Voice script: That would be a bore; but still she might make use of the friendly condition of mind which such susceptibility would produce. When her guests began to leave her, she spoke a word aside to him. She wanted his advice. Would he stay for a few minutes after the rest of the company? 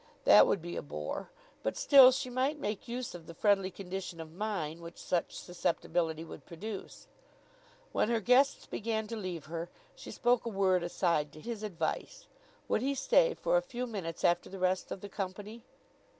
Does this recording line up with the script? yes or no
no